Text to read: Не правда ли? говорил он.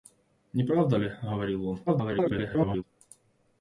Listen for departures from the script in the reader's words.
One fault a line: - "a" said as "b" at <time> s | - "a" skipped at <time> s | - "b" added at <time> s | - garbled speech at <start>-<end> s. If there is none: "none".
- garbled speech at 1.9-2.8 s